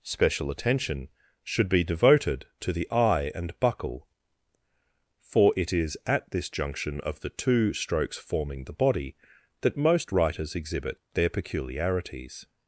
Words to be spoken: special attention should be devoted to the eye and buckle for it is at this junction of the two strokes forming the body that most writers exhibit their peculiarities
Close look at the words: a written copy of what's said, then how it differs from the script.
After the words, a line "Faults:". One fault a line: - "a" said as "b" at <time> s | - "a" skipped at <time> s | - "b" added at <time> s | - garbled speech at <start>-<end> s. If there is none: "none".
special attention should be devoted to the eye and buckle for it is at this junction of the two strokes forming the body that most writers exhibit their peculiarities
Faults:
none